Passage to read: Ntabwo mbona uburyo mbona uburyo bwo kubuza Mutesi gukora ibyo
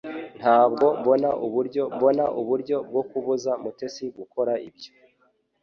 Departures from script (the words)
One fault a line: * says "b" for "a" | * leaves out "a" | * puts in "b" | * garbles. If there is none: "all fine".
all fine